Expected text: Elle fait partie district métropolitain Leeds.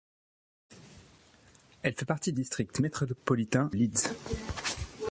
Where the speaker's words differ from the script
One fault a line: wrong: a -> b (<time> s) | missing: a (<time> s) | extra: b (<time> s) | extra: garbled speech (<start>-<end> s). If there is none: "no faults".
no faults